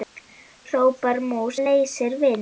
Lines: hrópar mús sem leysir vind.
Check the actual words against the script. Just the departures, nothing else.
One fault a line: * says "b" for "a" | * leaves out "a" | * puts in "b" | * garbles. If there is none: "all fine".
* leaves out "sem"